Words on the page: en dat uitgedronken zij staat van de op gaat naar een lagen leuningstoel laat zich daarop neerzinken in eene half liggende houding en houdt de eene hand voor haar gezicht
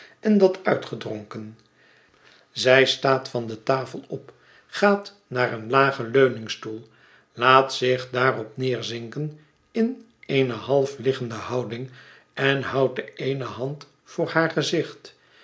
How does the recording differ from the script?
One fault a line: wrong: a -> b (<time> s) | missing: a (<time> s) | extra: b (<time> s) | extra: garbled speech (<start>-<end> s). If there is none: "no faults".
extra: tafel (3.6 s)